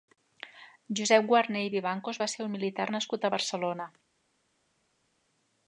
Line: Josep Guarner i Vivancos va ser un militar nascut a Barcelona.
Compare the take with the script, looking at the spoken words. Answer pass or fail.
pass